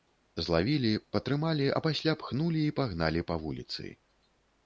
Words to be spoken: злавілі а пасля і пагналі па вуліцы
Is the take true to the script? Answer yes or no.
no